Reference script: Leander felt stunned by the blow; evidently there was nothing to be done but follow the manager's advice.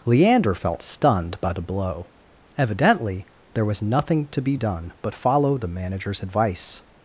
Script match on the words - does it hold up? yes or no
yes